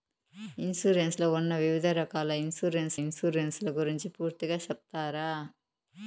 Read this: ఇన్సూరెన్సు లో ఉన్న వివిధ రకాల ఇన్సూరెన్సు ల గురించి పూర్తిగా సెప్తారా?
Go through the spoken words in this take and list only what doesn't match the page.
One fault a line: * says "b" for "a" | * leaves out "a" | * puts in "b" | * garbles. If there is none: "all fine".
* puts in "ఇన్సూరెన్సు"